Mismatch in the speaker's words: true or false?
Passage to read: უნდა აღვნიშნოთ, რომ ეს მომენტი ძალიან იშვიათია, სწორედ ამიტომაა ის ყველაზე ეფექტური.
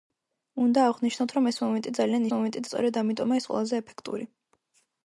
true